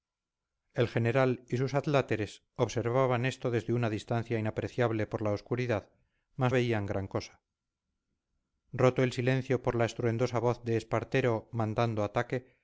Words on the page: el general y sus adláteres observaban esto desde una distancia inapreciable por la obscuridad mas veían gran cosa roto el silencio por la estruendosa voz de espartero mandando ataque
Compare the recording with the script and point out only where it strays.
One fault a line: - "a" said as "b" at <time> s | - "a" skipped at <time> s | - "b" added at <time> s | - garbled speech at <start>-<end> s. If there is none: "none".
none